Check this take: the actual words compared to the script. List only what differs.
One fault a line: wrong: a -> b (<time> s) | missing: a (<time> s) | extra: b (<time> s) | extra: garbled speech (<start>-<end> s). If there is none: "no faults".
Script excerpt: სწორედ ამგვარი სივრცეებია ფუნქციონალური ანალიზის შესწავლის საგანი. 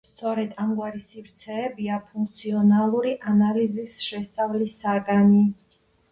no faults